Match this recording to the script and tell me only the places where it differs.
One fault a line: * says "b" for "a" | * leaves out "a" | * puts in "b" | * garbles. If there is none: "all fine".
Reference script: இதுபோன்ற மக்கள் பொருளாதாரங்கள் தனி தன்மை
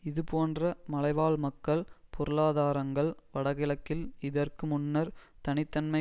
* puts in "மலைவாழ்"
* puts in "வடகிழக்கில் இதற்கு முன்னர்"